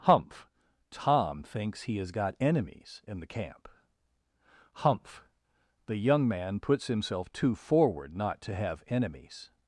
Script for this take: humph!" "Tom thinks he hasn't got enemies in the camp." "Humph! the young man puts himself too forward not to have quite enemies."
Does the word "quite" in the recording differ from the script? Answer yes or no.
yes